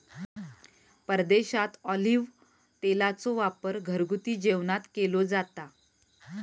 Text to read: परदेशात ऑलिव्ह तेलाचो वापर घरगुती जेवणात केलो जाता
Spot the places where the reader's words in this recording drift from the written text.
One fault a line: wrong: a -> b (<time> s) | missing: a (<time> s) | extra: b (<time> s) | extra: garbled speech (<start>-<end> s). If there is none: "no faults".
no faults